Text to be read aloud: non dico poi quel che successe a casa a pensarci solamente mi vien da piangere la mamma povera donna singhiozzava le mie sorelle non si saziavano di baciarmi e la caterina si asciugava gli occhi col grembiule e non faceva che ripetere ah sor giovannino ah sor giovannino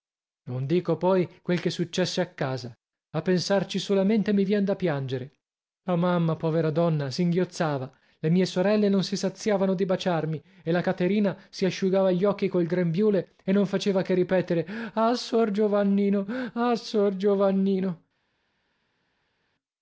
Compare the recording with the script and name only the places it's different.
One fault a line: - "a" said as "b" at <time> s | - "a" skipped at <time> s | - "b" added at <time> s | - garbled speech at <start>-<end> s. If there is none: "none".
none